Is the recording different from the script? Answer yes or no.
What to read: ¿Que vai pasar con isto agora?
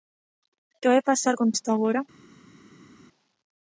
no